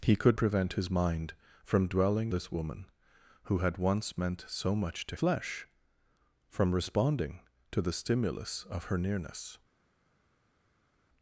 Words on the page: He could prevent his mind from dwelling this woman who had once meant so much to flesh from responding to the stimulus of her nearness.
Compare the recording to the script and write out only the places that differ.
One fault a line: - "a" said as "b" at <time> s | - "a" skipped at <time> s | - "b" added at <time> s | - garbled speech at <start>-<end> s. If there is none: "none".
none